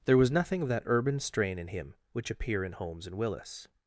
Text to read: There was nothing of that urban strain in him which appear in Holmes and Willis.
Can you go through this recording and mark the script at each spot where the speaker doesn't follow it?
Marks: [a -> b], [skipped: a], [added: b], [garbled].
There was nothing of that urban strain in him which appear in Holmes and Willis.